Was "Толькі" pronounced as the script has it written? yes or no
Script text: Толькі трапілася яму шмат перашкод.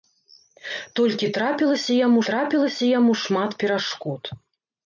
yes